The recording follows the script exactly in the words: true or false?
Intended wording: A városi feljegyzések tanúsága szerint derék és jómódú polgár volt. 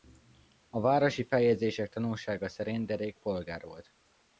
false